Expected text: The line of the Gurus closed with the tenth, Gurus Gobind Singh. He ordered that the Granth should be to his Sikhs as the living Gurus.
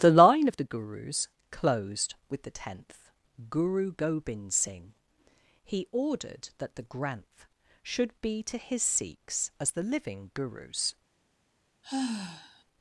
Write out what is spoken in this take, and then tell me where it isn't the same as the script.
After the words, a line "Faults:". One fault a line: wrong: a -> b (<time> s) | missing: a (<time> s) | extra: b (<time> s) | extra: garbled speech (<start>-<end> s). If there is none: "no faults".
The line of the Gurus closed with the tenth, Guru Gobind Singh. He ordered that the Granth should be to his Sikhs as the living Gurus.
Faults:
wrong: Gurus -> Guru (3.5 s)